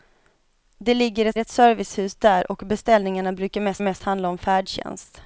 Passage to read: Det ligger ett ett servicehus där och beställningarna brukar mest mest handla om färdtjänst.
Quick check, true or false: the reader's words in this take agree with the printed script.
true